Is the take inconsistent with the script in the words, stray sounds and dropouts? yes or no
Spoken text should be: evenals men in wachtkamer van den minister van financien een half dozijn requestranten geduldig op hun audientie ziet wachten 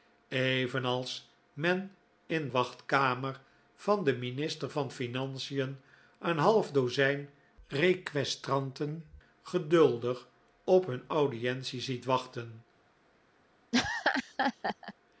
yes